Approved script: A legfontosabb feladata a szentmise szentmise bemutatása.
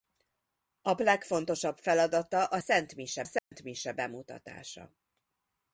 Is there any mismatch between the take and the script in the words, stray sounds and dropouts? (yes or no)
yes